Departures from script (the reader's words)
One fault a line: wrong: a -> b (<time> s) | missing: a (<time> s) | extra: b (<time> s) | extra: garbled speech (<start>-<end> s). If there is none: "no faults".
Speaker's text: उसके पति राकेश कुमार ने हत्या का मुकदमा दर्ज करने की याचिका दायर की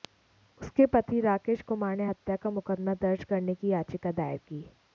no faults